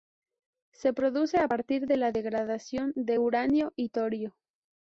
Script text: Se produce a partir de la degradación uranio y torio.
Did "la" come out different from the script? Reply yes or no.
no